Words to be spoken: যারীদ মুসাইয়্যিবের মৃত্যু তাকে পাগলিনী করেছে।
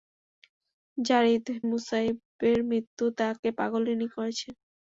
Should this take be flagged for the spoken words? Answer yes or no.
no